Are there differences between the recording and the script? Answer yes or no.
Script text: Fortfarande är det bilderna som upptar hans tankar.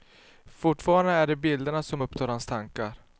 no